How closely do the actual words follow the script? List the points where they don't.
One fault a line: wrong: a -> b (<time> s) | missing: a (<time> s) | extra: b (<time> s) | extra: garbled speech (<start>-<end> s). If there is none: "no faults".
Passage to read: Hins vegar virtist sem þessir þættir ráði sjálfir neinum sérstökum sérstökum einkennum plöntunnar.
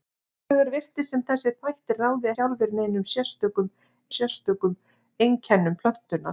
no faults